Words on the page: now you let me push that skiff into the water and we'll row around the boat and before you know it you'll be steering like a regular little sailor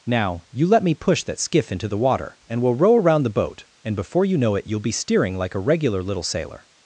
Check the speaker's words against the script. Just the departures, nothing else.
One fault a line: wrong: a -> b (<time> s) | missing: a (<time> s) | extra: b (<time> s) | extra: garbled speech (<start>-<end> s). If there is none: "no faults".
no faults